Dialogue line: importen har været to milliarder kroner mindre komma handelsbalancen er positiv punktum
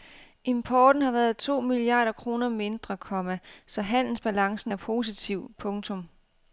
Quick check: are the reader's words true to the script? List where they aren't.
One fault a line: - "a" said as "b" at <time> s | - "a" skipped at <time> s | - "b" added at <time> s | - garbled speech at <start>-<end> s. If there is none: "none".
- "så" added at 3.7 s